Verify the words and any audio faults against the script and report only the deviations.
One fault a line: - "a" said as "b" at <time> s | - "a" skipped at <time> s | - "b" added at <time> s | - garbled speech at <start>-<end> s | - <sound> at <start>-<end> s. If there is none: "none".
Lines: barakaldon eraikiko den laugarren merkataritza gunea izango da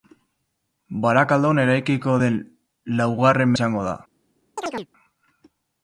- "merkataritza gunea" skipped at 3.5 s
- chirp at 4.6-4.9 s